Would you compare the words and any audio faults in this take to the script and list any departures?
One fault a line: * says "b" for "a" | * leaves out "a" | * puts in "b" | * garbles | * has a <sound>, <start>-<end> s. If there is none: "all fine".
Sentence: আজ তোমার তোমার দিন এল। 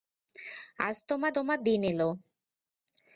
all fine